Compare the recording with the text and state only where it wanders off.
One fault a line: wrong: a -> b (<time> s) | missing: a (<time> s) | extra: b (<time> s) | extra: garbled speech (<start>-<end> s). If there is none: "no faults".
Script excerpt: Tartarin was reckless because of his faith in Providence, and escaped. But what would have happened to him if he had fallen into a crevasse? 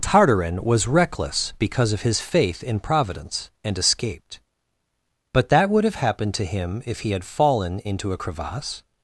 wrong: what -> that (5.5 s)